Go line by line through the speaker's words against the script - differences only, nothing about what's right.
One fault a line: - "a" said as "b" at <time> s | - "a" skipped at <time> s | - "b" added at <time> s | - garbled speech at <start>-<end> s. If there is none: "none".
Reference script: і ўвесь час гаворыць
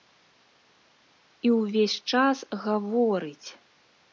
none